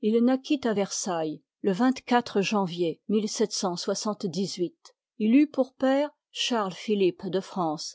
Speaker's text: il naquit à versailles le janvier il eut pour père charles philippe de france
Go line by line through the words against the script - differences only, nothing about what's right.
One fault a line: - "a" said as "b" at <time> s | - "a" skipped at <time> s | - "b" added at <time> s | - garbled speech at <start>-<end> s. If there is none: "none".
none